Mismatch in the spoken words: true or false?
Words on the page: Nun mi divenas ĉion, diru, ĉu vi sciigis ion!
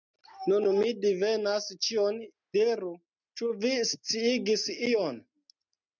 false